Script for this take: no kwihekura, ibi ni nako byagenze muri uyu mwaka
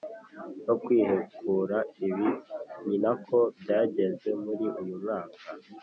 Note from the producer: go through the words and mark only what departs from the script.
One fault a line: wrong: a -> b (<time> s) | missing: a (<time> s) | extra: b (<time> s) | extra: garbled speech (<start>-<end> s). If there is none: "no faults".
no faults